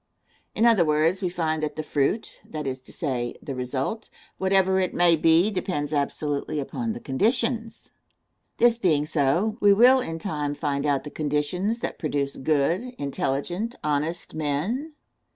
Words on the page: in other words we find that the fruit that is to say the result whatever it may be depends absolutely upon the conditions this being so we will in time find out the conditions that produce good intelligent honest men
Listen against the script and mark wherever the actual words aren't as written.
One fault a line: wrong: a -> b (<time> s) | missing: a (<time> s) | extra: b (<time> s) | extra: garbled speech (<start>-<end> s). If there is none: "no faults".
no faults